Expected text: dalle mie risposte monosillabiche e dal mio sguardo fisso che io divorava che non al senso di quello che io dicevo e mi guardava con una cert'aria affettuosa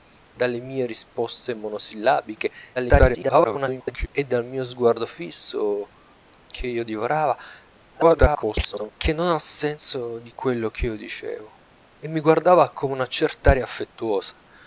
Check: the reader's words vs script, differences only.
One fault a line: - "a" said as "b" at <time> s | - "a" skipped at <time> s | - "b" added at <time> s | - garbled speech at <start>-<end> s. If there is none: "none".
- garbled speech at 2.8-4.1 s
- garbled speech at 7.9-8.9 s